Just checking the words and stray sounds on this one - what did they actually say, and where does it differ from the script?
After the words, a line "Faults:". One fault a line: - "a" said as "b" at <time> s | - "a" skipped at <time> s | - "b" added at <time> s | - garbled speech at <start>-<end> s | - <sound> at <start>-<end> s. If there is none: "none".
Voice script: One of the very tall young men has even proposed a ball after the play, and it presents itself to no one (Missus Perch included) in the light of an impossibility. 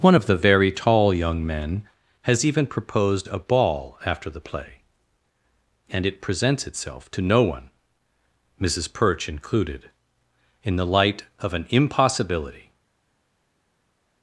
One of the very tall young men has even proposed a ball after the play, and it presents itself to no one (Missus Perch included) in the light of an impossibility.
Faults:
none